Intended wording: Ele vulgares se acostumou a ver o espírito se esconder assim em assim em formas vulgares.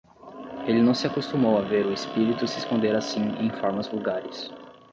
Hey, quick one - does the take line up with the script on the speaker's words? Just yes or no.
no